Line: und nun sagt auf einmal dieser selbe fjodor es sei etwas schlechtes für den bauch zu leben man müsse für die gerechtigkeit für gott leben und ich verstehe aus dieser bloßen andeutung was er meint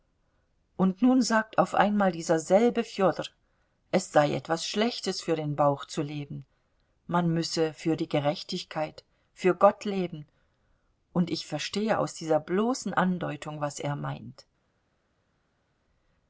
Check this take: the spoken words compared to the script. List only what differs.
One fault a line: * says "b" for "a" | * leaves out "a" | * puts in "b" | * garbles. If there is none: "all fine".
all fine